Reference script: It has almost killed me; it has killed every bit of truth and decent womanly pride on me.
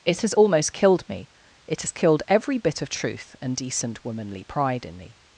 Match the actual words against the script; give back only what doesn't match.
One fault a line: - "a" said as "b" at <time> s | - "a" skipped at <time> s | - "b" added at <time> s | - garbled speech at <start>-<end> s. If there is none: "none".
- "on" said as "in" at 4.8 s